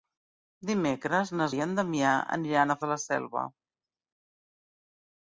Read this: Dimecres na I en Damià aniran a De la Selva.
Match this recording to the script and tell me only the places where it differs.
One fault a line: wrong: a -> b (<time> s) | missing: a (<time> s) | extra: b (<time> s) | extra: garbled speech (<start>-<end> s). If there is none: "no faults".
no faults